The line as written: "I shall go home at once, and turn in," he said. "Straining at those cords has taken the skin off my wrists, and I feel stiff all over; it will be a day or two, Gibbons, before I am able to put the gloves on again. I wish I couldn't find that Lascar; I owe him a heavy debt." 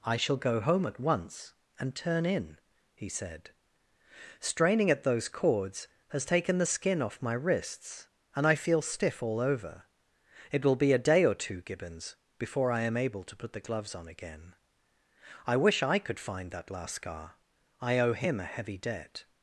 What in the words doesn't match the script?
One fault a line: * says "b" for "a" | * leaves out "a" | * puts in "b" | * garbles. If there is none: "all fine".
* says "could" for "couldn't"